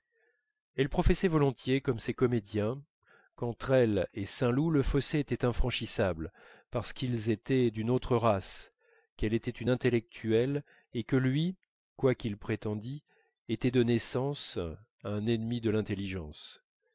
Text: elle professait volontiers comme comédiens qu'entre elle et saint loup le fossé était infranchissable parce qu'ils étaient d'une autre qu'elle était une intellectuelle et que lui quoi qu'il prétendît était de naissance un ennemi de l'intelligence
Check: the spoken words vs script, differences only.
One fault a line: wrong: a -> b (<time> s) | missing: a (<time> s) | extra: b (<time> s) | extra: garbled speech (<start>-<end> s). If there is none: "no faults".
extra: ces (2.0 s)
extra: race (8.2 s)